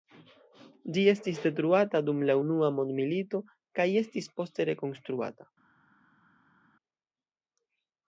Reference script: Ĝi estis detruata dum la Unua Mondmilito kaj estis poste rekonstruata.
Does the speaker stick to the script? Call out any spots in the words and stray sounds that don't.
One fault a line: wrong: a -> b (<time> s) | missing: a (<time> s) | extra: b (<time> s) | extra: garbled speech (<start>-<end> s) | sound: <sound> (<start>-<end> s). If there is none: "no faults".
no faults